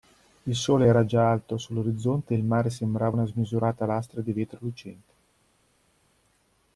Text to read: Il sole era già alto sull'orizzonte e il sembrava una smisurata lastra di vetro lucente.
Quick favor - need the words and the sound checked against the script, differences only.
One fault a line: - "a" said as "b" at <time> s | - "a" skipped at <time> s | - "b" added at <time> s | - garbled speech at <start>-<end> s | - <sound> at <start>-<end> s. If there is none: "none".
- "mare" added at 2.4 s